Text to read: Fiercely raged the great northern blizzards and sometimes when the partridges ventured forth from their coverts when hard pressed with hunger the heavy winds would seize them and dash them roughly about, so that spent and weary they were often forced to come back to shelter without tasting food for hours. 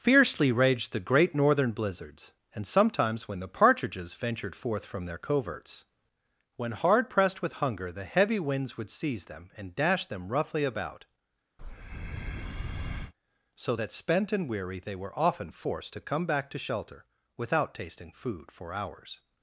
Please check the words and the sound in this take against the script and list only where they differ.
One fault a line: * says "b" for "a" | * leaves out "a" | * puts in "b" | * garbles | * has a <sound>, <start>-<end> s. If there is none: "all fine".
* has a breath, 11.6-13.1 s